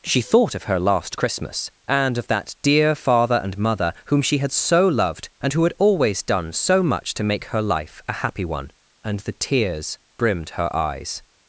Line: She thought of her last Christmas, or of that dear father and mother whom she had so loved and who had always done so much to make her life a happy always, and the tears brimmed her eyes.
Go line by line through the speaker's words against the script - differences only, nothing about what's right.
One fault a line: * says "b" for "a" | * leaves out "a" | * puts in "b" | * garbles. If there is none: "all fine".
* says "and" for "or"
* says "one" for "always"